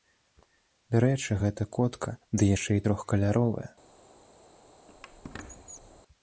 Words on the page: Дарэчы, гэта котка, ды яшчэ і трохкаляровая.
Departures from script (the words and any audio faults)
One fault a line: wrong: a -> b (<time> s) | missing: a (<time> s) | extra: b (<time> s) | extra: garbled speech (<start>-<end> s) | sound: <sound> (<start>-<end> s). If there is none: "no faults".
sound: squeak (4.9-6.0 s)